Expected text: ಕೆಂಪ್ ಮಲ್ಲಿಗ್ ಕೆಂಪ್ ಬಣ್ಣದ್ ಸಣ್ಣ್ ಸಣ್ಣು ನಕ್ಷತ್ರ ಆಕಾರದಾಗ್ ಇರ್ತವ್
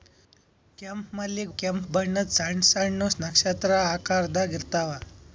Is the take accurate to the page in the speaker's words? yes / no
yes